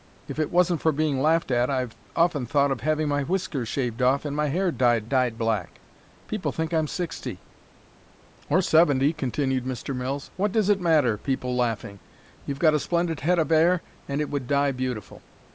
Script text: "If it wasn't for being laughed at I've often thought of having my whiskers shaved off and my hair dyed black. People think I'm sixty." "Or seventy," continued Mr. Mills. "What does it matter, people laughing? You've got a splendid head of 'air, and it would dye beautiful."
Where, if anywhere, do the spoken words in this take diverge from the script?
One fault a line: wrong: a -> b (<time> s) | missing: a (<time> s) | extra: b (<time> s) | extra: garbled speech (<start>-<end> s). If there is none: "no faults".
extra: dyed (5.0 s)